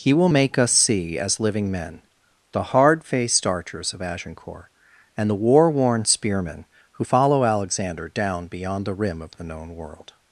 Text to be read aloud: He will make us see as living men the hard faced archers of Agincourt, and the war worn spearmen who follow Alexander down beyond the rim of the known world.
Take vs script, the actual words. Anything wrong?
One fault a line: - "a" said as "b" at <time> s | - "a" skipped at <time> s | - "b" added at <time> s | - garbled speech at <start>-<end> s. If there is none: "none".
none